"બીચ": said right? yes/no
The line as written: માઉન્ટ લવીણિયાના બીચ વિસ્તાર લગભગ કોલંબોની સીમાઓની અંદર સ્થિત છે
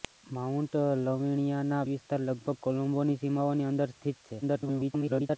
no